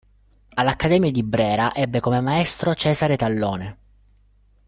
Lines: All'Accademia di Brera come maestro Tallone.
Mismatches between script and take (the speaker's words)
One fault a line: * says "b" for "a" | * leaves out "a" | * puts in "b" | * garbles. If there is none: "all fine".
* puts in "ebbe"
* puts in "Cesare"